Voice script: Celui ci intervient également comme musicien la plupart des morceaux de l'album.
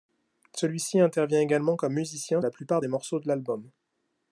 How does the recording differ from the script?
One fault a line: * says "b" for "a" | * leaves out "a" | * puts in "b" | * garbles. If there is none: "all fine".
all fine